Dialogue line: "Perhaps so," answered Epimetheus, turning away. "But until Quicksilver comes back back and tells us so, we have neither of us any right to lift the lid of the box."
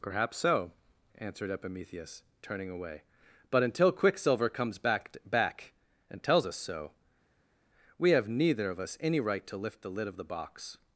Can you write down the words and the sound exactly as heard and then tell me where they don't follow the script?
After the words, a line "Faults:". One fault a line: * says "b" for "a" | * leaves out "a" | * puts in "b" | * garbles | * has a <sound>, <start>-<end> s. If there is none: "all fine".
"Perhaps so," answered Epimetheus, turning away. "But until Quicksilver comes back back and tells us so, we have neither of us any right to lift the lid of the box."
Faults:
all fine